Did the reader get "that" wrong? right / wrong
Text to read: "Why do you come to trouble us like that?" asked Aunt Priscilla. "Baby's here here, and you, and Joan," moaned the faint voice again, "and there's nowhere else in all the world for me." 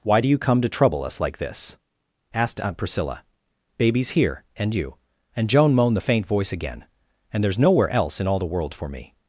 wrong